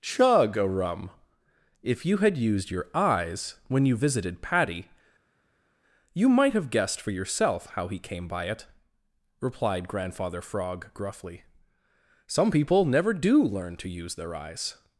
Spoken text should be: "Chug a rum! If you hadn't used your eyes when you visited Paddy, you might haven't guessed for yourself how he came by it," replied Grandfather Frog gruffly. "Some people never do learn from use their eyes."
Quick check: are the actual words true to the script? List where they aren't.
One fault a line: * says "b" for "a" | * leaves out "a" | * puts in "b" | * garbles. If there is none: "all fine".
* says "had" for "hadn't"
* says "have" for "haven't"
* says "to" for "from"